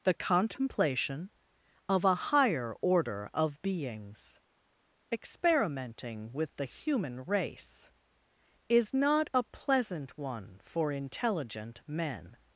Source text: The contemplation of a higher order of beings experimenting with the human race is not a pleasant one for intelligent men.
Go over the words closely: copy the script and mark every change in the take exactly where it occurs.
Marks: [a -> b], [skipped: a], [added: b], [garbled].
The contemplation of a higher order of beings experimenting with the human race is not a pleasant one for intelligent men.